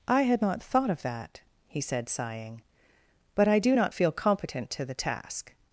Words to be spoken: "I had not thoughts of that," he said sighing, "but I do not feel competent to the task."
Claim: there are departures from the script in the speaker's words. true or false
true